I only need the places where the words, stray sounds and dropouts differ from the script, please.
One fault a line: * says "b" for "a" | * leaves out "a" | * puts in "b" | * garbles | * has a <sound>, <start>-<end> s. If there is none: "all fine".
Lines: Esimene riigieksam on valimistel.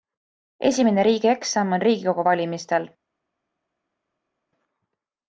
* puts in "riigikogu"